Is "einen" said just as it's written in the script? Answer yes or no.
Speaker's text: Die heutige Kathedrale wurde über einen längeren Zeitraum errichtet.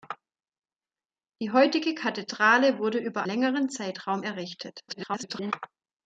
no